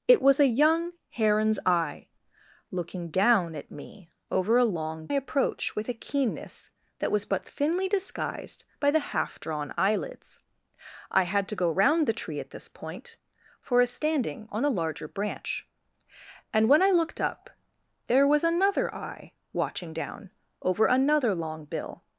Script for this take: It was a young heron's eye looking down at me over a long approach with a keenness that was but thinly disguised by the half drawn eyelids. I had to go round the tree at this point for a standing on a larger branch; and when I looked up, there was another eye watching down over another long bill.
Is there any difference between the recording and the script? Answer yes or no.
no